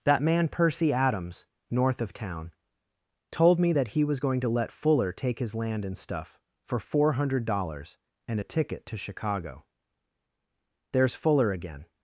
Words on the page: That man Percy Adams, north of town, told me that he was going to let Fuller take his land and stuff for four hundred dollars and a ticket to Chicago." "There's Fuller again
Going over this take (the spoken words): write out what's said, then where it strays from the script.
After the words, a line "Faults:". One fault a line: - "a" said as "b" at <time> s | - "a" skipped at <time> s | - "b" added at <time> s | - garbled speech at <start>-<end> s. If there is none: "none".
That man Percy Adams, north of town, told me that he was going to let Fuller take his land and stuff for four hundred dollars and a ticket to Chicago." "There's Fuller again
Faults:
none